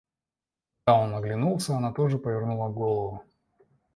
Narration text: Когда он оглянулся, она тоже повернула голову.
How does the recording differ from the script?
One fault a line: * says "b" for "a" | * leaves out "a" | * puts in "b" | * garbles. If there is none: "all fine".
all fine